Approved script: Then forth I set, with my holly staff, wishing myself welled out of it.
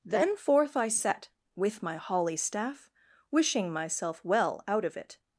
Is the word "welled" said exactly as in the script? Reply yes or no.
no